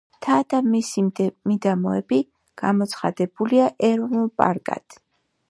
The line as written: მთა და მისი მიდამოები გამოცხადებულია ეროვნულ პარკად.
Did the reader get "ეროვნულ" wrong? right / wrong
right